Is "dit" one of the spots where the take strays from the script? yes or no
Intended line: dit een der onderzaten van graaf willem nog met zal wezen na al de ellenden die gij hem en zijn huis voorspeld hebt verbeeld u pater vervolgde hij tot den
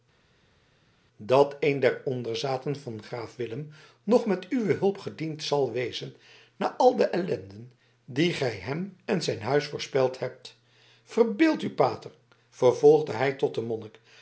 yes